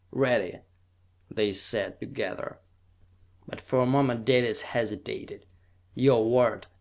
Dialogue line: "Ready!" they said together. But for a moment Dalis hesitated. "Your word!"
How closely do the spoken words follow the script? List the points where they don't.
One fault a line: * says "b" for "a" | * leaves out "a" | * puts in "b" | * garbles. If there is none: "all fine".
all fine